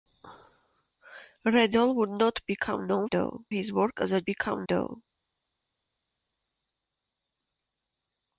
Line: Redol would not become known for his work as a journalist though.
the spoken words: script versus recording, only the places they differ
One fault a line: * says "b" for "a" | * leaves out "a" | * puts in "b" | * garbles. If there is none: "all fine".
* says "though" for "for"
* says "become" for "journalist"